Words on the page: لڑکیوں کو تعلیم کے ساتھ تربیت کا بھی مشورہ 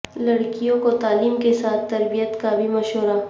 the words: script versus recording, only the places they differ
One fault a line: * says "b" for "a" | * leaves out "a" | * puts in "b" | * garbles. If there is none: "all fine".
all fine